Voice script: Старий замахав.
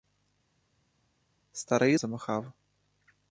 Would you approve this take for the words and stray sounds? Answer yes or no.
yes